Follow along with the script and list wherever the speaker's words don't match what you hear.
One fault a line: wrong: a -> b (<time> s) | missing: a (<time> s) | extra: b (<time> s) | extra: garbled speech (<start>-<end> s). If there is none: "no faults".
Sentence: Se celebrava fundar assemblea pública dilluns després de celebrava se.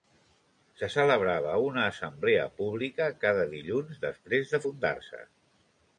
wrong: fundar -> una (1.6 s)
extra: cada (3.2 s)
wrong: celebrava -> fundar (4.6 s)